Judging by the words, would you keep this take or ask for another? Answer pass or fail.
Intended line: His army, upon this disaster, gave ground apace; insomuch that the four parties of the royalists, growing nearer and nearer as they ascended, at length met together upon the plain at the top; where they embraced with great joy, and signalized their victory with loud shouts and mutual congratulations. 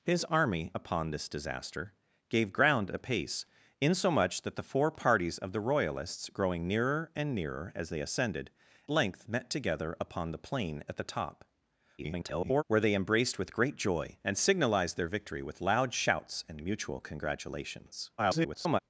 fail